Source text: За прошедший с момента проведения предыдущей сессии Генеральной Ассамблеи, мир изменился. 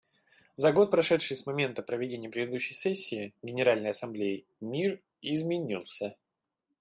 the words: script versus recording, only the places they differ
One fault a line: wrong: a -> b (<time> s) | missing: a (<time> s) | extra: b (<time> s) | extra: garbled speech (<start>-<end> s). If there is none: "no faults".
extra: год (0.7 s)